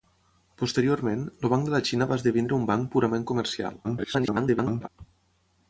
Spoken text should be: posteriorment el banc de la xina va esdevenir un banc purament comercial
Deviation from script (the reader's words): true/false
true